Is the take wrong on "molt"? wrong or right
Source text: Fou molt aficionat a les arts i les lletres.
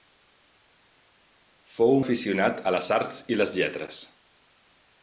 wrong